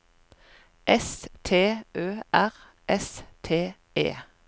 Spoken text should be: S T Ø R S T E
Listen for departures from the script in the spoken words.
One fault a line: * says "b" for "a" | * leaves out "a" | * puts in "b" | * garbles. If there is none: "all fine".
all fine